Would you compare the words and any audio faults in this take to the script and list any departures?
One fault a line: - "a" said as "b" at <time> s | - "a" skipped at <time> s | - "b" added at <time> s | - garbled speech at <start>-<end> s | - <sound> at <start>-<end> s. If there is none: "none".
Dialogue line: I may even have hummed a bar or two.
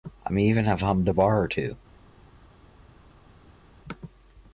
none